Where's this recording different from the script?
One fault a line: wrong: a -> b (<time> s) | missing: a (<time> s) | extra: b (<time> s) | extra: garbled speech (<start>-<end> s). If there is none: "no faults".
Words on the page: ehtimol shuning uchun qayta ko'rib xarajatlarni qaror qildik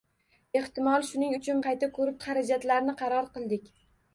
no faults